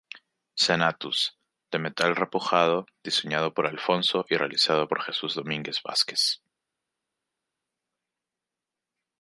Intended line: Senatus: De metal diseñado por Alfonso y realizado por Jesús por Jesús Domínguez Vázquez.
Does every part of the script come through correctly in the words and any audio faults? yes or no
no